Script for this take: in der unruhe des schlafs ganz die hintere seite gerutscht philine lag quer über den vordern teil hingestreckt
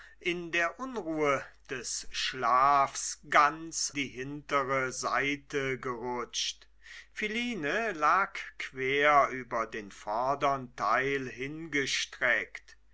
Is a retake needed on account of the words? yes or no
no